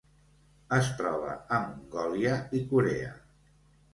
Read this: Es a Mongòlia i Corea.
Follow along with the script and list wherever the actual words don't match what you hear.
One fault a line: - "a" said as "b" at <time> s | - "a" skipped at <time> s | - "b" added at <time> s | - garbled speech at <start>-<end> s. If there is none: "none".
- "troba" added at 1.0 s